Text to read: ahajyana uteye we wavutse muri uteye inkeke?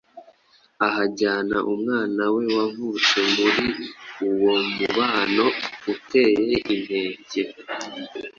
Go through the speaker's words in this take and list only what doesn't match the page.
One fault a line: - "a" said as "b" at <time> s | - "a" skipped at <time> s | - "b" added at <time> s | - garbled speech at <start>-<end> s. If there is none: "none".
- "uteye" said as "umwana" at 1.7 s
- "uwo mubano" added at 4.3 s